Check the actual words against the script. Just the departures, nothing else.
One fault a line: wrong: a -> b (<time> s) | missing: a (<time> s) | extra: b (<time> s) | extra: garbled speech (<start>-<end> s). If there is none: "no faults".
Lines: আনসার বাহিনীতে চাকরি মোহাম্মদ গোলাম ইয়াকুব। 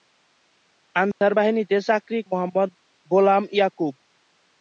no faults